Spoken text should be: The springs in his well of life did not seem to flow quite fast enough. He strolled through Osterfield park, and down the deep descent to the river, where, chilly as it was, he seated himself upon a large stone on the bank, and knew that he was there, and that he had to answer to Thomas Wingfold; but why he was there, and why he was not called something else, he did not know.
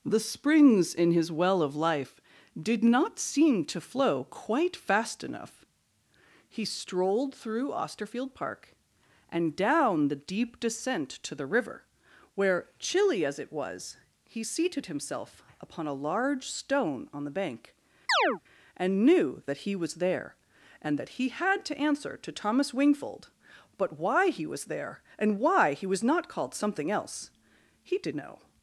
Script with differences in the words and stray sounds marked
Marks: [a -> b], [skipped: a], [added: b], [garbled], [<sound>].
The springs in his well of life did not seem to flow quite fast enough. He strolled through Osterfield park, and down the deep descent to the river, where, chilly as it was, he seated himself upon a large stone on the bank, [chirp] and knew that he was there, and that he had to answer to Thomas Wingfold; but why he was there, and why he was not called something else, he did [skipped: not] know.